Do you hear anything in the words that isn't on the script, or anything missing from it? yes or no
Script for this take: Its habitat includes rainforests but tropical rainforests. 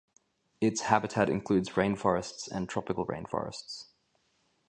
yes